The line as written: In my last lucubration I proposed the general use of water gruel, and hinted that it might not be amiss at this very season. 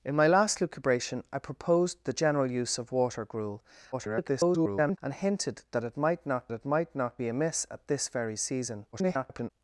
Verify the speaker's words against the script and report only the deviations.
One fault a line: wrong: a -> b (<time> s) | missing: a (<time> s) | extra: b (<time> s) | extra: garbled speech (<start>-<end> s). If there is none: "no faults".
extra: garbled speech (3.9-5.0 s)
extra: it might not (6.5 s)
extra: garbled speech (8.9-9.5 s)